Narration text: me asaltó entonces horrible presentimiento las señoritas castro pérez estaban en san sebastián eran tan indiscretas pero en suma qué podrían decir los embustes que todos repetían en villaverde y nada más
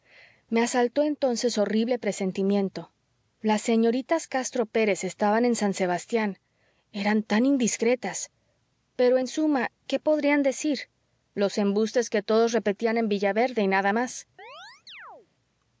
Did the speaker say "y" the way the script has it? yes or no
yes